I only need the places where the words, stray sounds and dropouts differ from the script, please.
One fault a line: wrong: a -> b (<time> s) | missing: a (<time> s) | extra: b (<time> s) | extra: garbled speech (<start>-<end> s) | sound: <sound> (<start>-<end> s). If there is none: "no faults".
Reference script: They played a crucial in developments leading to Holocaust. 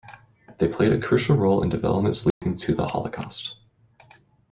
extra: role (1.4 s)
sound: dropout (2.3-2.4 s)
extra: the (2.7 s)